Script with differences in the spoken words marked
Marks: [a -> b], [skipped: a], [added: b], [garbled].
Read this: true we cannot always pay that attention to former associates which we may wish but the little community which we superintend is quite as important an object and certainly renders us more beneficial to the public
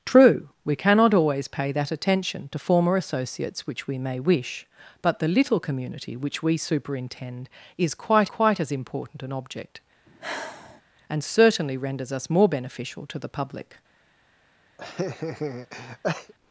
true we cannot always pay that attention to former associates which we may wish but the little community which we superintend is quite [added: quite] as important an object and certainly renders us more beneficial to the public